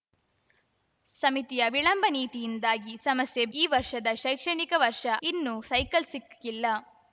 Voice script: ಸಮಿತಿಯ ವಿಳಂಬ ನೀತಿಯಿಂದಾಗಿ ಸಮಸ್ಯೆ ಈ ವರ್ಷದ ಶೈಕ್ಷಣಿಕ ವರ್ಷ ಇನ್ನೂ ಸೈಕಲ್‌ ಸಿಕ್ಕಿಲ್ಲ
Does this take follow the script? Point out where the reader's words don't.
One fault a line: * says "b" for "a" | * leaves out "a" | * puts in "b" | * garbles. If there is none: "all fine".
all fine